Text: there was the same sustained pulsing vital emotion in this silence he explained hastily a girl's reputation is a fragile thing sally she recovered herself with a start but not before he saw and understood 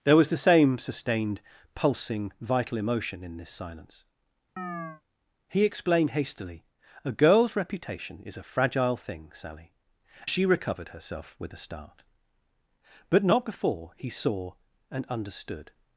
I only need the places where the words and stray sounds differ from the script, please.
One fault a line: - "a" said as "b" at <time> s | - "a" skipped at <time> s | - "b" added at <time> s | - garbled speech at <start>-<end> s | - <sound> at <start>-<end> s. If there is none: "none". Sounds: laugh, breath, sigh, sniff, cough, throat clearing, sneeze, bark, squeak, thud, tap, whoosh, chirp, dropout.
- chirp at 4.6-5.0 s